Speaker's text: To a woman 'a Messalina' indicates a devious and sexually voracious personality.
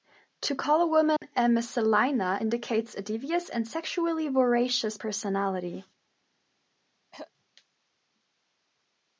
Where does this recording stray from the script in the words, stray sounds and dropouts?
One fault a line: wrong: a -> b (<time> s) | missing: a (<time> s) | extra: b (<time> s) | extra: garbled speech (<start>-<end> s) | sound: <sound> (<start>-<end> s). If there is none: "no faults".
extra: call (0.6 s)
sound: dropout (1.2-1.2 s)
sound: throat clearing (7.1-7.3 s)